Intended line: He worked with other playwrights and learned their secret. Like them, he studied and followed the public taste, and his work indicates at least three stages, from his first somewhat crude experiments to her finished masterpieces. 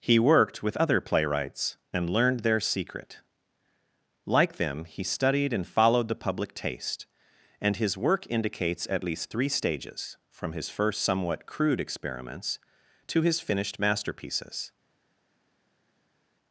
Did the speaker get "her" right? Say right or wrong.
wrong